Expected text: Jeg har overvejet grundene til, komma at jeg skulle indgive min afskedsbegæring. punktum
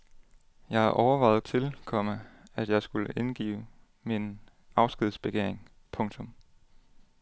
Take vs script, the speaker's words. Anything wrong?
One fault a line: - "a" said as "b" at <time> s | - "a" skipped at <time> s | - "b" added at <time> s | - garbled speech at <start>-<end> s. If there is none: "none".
- "grundene" skipped at 1.4 s